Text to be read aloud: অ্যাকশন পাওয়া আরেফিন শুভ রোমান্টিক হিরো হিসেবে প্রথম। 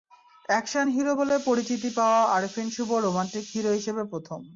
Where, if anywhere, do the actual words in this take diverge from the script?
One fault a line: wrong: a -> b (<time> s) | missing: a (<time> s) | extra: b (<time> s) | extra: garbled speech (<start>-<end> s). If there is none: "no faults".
extra: হিরো বলে পরিচিতি (0.9 s)